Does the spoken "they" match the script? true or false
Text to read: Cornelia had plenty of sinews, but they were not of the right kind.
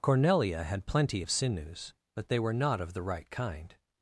true